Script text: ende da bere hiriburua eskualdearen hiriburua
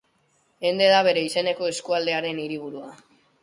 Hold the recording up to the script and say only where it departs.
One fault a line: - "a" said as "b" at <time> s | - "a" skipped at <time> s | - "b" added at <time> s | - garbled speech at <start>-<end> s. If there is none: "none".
- "hiriburua" said as "izeneko" at 1.2 s